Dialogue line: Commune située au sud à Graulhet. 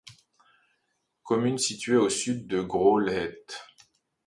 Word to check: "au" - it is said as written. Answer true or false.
true